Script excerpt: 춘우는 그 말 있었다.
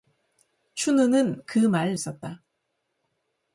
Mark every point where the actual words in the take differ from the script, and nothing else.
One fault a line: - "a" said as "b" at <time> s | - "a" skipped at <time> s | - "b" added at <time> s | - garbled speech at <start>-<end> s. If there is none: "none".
none